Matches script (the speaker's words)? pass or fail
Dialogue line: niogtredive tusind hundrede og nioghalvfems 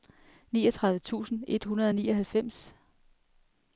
fail